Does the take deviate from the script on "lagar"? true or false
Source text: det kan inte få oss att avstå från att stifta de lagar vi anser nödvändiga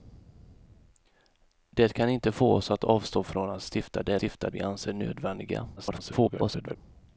true